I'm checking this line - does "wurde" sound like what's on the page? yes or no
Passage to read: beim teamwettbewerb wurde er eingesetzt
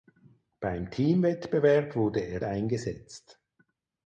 yes